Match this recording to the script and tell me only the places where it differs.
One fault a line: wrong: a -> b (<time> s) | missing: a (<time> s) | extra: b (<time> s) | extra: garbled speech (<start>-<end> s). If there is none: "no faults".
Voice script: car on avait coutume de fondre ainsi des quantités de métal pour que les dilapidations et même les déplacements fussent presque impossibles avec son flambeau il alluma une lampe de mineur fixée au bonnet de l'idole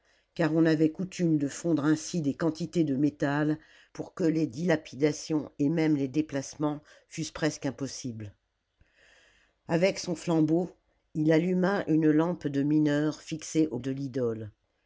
missing: bonnet (13.8 s)